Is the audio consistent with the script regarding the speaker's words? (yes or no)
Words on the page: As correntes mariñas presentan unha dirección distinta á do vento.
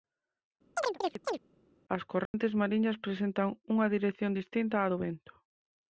yes